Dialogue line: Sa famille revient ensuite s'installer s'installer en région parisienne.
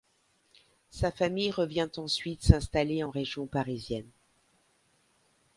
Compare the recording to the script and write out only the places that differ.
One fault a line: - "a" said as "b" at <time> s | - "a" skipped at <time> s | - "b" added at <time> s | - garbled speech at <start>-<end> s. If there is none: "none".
- "s'installer" skipped at 3.0 s